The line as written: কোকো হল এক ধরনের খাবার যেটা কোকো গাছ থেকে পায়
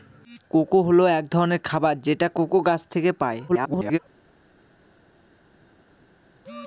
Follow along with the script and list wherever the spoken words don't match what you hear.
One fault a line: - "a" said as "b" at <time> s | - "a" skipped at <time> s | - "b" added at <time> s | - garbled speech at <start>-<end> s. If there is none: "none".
- garbled speech at 3.5-4.0 s